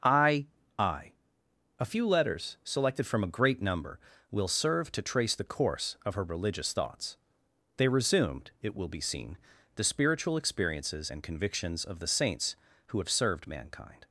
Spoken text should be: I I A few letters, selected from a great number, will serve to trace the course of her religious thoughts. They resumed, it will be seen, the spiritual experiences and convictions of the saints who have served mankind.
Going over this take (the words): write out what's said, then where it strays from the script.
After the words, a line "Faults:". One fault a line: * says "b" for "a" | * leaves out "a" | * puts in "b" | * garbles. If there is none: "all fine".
I I A few letters, selected from a great number, will serve to trace the course of her religious thoughts. They resumed, it will be seen, the spiritual experiences and convictions of the saints who have served mankind.
Faults:
all fine